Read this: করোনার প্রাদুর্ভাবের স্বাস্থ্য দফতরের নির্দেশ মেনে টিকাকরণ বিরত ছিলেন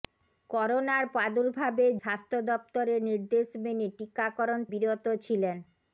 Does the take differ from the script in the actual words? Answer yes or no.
no